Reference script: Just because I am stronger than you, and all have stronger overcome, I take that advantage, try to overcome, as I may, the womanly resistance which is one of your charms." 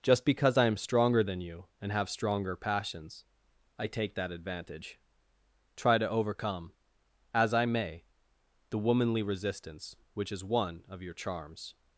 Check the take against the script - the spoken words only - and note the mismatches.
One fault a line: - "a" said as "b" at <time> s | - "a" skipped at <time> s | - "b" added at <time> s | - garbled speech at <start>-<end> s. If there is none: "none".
- "all" skipped at 1.9 s
- "overcome" said as "passions" at 2.5 s